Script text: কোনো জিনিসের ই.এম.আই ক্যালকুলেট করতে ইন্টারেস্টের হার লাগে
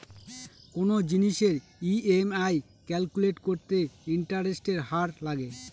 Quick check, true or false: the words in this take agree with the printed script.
true